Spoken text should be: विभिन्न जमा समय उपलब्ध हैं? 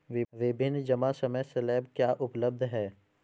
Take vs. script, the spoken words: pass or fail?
fail